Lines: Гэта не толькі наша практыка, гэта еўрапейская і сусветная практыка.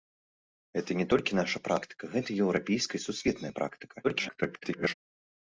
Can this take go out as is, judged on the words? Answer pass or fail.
fail